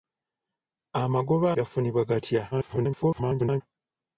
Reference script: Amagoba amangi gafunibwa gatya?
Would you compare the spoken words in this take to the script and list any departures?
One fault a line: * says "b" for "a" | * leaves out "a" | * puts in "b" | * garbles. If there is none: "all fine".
* leaves out "amangi"
* garbles